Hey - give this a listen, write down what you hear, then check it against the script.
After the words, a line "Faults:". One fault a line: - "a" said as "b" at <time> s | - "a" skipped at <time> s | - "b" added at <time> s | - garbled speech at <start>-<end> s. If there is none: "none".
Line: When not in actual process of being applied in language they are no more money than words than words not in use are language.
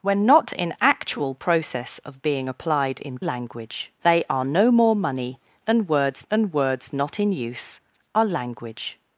When not in actual process of being applied in language they are no more money than words than words not in use are language.
Faults:
none